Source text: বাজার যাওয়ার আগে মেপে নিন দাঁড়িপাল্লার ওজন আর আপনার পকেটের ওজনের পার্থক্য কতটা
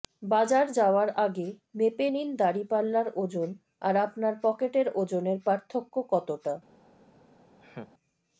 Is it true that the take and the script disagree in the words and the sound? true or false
true